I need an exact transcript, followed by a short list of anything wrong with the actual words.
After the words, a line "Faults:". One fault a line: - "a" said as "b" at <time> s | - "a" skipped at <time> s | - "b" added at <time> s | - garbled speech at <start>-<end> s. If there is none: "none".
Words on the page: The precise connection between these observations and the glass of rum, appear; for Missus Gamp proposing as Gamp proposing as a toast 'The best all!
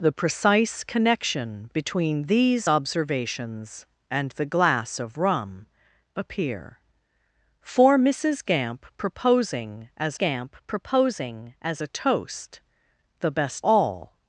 The precise connection between these observations and the glass of rum, appear; for Missus Gamp proposing as Gamp proposing as a toast 'The best all!
Faults:
none